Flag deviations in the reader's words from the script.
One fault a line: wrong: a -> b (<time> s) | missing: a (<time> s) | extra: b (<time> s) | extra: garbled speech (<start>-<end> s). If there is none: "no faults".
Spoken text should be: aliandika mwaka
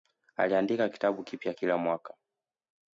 extra: kitabu kipya kila (0.9 s)